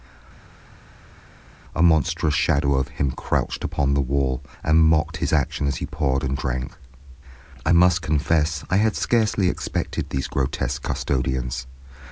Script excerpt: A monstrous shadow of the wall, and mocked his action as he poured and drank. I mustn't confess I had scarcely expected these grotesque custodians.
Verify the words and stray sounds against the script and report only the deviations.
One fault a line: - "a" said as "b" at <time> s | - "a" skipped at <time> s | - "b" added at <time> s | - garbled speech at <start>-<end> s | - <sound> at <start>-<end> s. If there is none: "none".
- "him crouched upon" added at 2.9 s
- "mustn't" said as "must" at 7.7 s